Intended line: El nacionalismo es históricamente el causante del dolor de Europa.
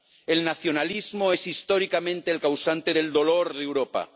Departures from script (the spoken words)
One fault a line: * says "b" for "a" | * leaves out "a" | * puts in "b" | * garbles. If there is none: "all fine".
all fine